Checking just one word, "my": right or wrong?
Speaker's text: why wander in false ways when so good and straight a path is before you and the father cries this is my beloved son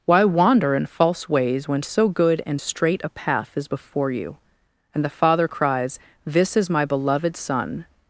right